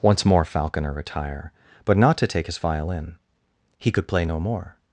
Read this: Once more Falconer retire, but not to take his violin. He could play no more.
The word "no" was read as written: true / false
true